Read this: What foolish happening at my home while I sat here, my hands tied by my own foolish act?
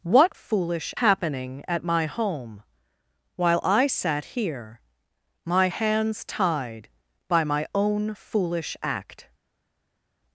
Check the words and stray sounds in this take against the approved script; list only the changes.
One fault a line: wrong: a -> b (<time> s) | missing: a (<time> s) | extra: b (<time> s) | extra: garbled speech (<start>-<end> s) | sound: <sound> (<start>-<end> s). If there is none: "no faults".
no faults